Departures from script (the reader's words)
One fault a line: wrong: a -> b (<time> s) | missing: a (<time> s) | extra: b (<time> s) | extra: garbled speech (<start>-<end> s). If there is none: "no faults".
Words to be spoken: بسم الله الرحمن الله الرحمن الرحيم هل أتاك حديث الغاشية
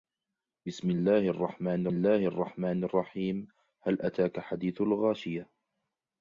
no faults